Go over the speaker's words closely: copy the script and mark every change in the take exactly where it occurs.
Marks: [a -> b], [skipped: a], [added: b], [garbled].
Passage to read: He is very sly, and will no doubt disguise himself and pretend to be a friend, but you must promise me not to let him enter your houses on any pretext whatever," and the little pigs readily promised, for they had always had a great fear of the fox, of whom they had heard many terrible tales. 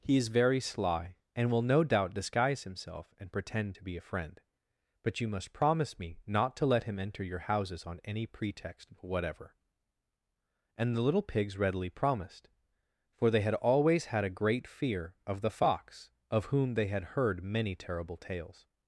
He is very sly, and will no doubt disguise himself and pretend to be a friend, but you must promise me not to let him enter your houses on any pretext whatever," and the little pigs readily promised, for they had always had a great fear of the fox, of whom they had heard many terrible tales.